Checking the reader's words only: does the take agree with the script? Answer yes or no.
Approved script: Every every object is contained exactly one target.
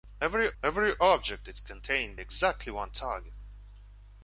yes